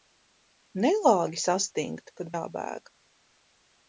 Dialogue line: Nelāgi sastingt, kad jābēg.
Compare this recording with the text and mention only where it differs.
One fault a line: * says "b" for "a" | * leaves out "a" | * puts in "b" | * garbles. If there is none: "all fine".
all fine